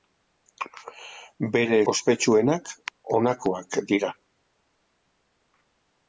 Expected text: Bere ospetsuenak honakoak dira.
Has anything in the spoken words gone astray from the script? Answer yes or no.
no